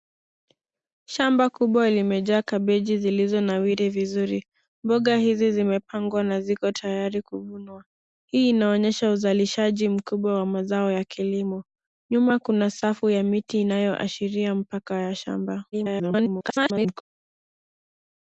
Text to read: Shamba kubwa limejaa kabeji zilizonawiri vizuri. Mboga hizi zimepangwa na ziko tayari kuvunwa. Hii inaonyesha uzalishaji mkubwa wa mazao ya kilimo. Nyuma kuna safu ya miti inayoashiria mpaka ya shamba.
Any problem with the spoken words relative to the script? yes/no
yes